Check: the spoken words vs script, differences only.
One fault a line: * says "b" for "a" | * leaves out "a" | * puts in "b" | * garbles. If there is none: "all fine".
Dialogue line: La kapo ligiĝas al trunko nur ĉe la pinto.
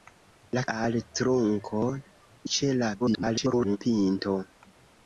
* leaves out "kapo ligiĝas"
* leaves out "nur"
* garbles